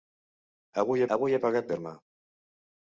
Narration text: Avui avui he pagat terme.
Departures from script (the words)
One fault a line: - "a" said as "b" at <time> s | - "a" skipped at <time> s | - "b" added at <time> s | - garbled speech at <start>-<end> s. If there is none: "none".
none